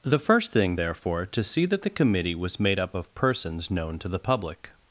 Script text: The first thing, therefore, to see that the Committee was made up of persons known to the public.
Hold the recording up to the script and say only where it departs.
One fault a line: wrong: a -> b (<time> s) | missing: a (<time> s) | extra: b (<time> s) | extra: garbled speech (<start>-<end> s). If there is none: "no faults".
no faults